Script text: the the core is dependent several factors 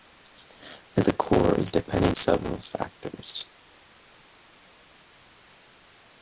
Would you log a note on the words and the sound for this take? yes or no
no